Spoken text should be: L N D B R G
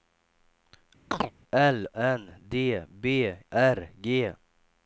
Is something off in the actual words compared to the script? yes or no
no